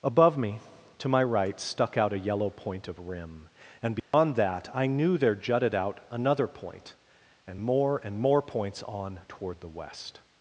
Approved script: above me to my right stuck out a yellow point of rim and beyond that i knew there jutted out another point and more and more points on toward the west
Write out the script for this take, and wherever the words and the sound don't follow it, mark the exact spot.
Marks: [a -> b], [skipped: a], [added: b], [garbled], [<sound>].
above me to my right stuck out a yellow point of rim and beyond [dropout] that i knew there jutted out another point and more and more points on toward the west